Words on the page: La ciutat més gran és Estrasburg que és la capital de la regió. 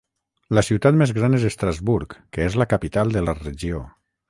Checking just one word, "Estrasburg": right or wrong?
right